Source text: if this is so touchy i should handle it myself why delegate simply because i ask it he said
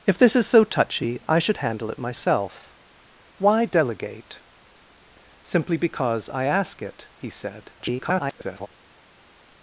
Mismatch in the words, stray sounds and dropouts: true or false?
true